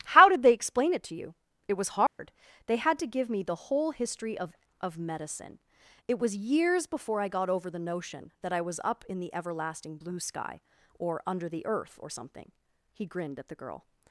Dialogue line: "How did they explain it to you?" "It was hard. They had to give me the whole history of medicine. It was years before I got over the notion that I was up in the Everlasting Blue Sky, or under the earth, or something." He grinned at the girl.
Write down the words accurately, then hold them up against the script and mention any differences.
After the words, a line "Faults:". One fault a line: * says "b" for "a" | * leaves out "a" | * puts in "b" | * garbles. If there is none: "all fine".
"How did they explain it to you?" "It was hard. They had to give me the whole history of of medicine. It was years before I got over the notion that I was up in the Everlasting Blue Sky, or under the earth, or something." He grinned at the girl.
Faults:
* puts in "of"